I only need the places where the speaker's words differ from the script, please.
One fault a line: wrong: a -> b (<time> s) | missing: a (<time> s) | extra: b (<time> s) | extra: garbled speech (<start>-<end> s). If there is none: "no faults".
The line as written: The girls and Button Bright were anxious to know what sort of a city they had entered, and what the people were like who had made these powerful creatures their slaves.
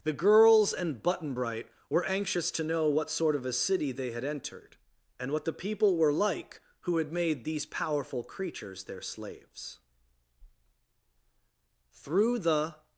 extra: Through the (11.9 s)